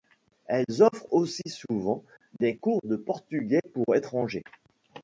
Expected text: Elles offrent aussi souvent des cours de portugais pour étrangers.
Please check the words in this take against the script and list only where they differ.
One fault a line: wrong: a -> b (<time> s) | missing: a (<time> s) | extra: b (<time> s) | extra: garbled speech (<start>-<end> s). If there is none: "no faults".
no faults